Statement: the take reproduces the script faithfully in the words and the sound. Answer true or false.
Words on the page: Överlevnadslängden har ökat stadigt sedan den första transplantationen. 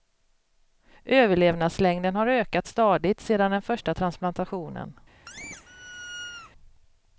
false